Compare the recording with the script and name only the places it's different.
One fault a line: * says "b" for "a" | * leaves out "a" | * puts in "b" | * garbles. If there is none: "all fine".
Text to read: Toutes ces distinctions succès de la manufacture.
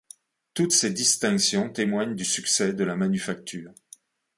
* puts in "témoignent du"